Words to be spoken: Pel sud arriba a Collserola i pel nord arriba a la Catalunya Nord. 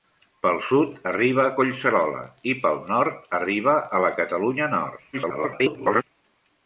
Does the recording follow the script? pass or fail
fail